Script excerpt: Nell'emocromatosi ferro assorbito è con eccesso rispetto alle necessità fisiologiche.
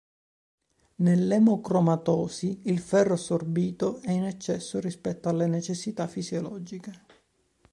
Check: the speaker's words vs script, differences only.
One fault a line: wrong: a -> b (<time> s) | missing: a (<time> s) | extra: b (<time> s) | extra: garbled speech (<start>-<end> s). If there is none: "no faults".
extra: il (2.6 s)
wrong: con -> in (4.1 s)